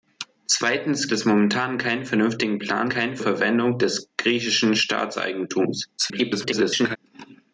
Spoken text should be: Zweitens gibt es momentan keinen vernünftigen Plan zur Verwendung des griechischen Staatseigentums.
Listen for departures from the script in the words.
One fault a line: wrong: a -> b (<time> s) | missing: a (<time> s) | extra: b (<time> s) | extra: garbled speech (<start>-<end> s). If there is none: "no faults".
missing: gibt (1.1 s)
wrong: zur -> keinen (2.9 s)
extra: garbled speech (6.0-7.0 s)